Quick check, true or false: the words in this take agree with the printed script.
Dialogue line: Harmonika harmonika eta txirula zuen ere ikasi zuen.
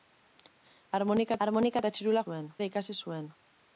true